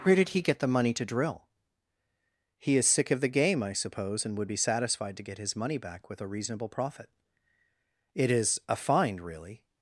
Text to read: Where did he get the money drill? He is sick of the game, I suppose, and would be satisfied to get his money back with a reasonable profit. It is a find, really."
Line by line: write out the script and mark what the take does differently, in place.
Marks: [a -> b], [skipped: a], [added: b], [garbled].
Where did he get the money [added: to] drill? He is sick of the game, I suppose, and would be satisfied to get his money back with a reasonable profit. It is a find, really."